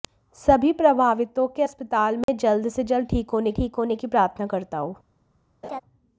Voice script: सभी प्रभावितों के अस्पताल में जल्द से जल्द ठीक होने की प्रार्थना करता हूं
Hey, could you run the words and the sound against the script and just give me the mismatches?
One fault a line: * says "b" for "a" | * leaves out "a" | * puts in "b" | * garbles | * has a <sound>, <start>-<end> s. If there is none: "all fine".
* has a dropout, 2.2-2.3 s
* puts in "ठीक होने"
* has a laugh, 5.6-5.8 s